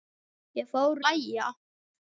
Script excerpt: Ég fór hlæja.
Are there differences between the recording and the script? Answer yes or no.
no